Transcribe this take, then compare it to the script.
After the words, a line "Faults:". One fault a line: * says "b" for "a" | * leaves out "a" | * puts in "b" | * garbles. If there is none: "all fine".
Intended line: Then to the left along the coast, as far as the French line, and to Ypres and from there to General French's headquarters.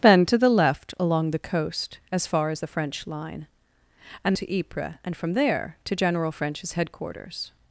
Then to the left along the coast, as far as the French line, and to Ypres and from there to General French's headquarters.
Faults:
all fine